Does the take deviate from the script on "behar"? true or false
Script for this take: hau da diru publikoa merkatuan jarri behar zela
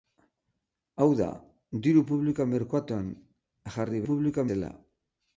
true